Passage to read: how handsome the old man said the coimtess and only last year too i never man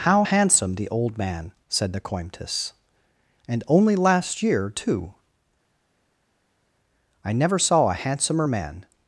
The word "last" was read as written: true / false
true